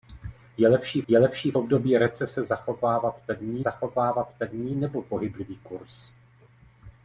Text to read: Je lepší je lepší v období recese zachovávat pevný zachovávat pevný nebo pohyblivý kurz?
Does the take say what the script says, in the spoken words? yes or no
yes